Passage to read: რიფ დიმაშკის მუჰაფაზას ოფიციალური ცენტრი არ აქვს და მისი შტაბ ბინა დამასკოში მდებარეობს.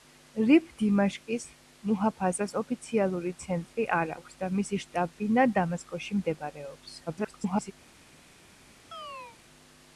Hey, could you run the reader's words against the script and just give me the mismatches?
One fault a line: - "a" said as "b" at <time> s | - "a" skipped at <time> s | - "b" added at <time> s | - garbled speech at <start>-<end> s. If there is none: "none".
- garbled speech at 7.1-7.7 s